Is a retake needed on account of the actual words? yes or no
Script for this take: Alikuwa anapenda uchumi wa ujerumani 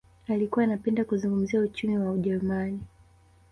yes